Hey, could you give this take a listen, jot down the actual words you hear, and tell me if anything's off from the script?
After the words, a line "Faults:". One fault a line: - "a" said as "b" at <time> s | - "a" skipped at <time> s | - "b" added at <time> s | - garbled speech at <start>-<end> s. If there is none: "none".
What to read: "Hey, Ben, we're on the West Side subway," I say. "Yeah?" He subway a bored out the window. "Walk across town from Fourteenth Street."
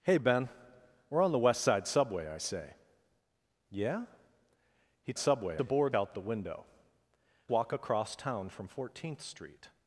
"Hey, Ben, we're on the West Side subway," I say. "Yeah?" He subway a bored out the window. "Walk across town from Fourteenth Street."
Faults:
none